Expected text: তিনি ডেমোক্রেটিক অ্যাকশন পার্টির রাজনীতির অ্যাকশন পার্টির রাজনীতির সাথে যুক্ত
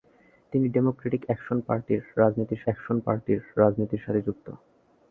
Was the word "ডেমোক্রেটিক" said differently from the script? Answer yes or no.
no